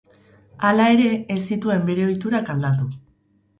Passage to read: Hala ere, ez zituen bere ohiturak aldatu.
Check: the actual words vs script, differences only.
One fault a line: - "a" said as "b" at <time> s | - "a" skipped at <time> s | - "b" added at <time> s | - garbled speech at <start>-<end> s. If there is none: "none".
none